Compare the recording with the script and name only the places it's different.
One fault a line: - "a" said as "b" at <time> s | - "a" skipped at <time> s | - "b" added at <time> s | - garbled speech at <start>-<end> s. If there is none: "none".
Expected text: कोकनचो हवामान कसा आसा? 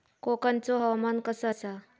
none